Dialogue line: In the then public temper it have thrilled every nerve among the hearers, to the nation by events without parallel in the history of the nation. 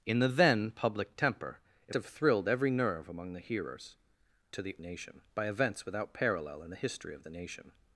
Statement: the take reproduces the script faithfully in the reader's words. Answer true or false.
true